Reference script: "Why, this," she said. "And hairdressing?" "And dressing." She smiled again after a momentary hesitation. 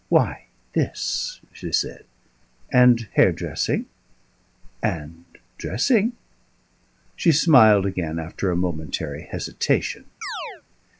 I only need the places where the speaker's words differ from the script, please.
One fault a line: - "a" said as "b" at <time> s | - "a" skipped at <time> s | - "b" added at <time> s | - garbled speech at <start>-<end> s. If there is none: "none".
none